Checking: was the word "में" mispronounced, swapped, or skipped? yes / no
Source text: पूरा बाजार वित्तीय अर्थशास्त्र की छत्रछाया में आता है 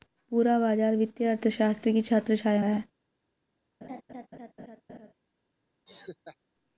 yes